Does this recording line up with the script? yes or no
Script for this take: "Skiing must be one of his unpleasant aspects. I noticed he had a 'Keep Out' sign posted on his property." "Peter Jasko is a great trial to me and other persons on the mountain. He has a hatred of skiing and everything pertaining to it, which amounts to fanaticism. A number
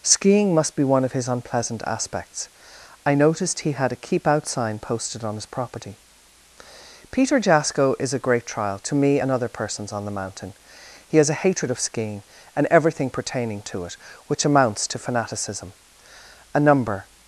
yes